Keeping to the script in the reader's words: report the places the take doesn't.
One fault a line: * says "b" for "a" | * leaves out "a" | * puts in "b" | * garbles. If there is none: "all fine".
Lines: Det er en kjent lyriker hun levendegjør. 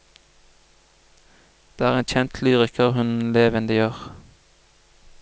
all fine